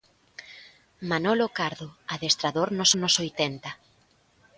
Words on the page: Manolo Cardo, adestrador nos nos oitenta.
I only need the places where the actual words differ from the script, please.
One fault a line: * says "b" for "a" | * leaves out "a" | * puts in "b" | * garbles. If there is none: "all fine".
all fine